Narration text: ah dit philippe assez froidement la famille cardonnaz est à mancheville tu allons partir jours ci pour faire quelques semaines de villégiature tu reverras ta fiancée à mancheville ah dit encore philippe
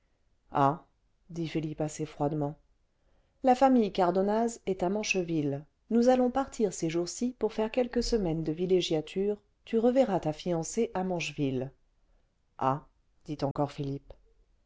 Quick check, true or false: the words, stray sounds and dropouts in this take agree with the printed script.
false